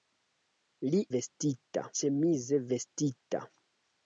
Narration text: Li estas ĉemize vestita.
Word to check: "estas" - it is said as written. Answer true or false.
false